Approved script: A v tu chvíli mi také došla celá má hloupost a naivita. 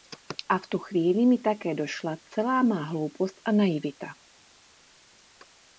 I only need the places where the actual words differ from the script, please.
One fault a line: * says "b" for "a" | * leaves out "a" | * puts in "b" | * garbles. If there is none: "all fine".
all fine